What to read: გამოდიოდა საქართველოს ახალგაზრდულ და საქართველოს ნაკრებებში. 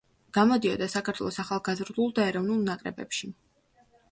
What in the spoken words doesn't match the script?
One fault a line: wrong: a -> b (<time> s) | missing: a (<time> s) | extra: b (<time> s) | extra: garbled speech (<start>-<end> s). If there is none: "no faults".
wrong: საქართველოს -> ეროვნულ (2.3 s)